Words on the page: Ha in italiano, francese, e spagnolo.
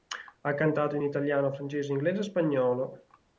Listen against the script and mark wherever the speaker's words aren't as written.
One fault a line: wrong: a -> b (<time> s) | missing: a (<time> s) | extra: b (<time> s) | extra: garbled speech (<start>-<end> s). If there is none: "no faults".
extra: cantato (0.6 s)
extra: inglese (1.9 s)